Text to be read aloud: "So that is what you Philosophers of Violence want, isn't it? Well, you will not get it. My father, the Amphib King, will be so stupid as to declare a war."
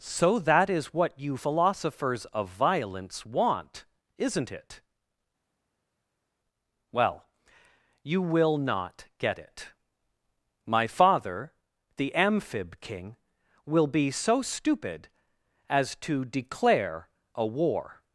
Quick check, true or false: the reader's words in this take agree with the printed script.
true